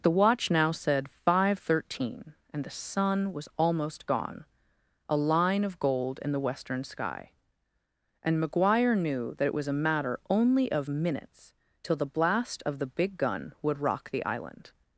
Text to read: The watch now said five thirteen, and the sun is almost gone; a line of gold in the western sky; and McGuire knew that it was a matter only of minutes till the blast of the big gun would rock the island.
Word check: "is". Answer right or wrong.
wrong